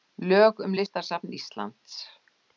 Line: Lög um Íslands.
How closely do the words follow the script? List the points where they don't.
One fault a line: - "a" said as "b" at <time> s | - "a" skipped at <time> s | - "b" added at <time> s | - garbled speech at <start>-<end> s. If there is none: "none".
- "Listasafn" added at 0.7 s